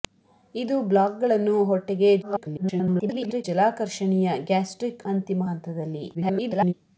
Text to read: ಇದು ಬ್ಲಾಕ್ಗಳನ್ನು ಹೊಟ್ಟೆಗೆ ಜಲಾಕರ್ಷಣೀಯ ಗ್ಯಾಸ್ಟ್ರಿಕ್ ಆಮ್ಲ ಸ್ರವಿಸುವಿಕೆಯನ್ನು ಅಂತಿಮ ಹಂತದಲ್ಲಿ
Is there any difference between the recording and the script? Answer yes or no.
yes